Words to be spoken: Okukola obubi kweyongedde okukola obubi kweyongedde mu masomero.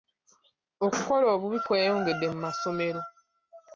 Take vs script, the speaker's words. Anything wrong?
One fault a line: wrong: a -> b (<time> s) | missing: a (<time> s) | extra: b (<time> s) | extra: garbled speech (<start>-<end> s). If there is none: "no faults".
missing: okukola obubi kweyongedde (2.2 s)